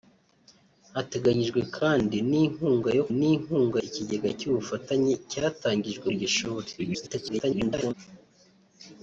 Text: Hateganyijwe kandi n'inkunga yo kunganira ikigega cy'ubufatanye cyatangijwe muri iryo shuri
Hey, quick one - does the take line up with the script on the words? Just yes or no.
no